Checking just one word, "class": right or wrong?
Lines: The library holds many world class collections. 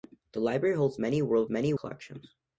wrong